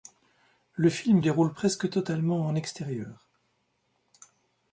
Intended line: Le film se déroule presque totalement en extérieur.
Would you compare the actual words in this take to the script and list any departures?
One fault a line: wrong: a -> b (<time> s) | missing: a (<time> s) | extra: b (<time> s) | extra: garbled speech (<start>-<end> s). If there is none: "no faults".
missing: se (1.2 s)